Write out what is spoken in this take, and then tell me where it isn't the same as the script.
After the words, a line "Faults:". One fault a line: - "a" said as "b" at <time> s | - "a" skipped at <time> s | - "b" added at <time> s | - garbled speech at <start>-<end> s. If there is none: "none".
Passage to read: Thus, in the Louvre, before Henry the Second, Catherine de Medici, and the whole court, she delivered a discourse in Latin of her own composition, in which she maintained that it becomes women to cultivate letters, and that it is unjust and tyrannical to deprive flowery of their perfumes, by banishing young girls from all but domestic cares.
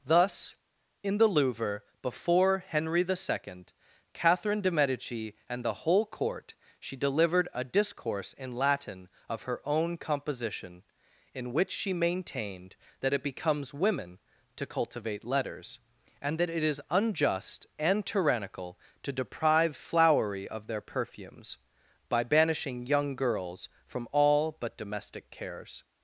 Thus, in the Louvre, before Henry the Second, Catherine de Medici, and the whole court, she delivered a discourse in Latin of her own composition, in which she maintained that it becomes women to cultivate letters, and that it is unjust and tyrannical to deprive flowery of their perfumes, by banishing young girls from all but domestic cares.
Faults:
none